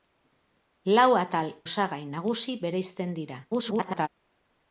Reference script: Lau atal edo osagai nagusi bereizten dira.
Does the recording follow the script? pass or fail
fail